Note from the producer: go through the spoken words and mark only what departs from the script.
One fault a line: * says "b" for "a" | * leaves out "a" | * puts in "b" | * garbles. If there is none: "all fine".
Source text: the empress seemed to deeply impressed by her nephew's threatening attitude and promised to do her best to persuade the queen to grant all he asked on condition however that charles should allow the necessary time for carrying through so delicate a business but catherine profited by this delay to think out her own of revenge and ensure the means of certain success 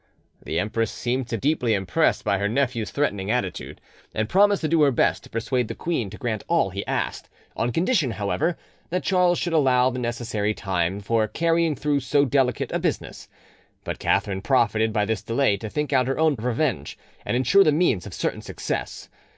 all fine